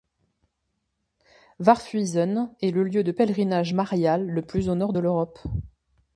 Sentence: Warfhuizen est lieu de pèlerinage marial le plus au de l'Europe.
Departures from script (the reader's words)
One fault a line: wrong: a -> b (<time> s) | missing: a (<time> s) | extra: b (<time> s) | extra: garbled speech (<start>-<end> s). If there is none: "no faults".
extra: le (2.7 s)
extra: nord (4.7 s)